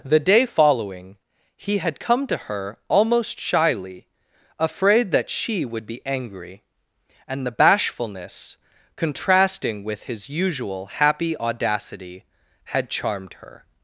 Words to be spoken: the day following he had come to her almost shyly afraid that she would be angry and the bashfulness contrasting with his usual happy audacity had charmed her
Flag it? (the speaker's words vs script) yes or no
no